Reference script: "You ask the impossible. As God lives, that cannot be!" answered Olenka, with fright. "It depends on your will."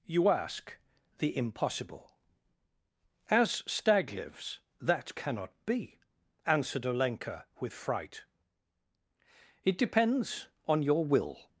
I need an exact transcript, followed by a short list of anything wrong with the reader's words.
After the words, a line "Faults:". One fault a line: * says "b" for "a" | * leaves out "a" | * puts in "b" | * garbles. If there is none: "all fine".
"You ask the impossible. As Stag lives, that cannot be!" answered Olenka, with fright. "It depends on your will."
Faults:
* says "Stag" for "God"